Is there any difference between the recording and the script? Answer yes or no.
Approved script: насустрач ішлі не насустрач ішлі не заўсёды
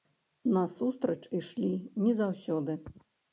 yes